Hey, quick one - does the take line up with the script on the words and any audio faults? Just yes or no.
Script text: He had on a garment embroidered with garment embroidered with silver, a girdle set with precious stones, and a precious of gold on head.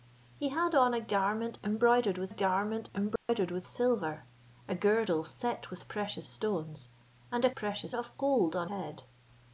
no